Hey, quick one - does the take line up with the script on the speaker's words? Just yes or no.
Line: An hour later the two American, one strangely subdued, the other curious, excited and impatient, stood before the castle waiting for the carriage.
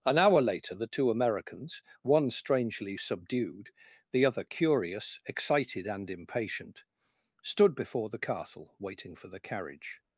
no